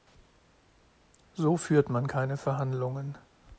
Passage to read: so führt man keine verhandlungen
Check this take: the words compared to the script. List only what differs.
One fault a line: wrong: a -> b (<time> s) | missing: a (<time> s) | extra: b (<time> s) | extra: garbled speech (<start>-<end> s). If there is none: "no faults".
no faults